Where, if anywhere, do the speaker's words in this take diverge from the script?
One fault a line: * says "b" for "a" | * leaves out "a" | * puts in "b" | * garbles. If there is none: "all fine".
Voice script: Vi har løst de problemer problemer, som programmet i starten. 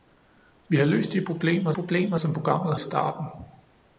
all fine